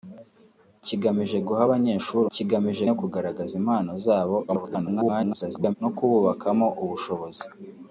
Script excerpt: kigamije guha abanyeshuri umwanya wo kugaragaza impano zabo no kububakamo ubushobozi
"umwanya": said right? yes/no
no